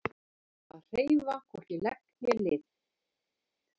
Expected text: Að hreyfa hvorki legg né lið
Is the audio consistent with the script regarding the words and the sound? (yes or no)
yes